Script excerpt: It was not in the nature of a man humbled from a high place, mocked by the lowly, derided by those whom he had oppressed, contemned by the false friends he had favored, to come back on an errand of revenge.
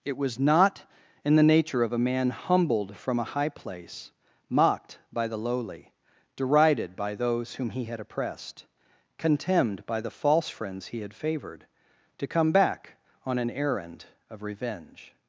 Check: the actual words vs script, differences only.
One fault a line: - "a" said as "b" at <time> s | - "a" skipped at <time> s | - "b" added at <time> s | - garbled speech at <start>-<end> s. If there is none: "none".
none